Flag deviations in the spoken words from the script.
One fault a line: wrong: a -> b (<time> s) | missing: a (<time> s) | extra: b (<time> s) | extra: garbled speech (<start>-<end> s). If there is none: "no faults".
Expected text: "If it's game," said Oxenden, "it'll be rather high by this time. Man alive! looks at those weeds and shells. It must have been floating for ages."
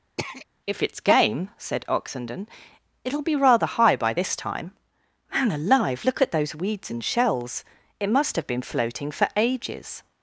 wrong: looks -> look (6.0 s)